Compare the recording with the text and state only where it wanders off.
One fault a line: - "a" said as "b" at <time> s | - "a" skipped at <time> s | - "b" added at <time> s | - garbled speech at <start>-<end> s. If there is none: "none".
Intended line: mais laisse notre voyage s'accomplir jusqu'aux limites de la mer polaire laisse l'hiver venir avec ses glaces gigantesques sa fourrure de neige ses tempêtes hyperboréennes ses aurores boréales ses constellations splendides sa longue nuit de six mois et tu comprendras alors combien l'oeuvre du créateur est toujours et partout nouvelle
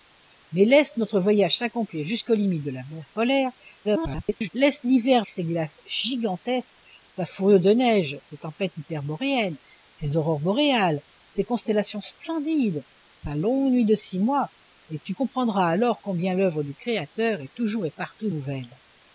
- garbled speech at 3.8-4.5 s
- "venir avec" skipped at 5.2 s